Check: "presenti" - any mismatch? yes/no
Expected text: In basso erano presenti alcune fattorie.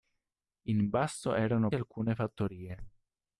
yes